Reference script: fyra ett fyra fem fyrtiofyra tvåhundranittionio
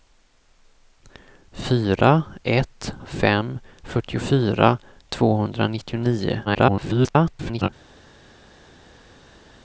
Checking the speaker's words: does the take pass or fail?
fail